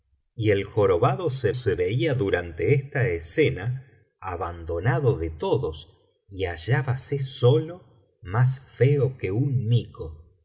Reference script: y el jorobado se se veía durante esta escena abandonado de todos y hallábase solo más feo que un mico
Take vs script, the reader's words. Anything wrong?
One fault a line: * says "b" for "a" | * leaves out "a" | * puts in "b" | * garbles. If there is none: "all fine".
all fine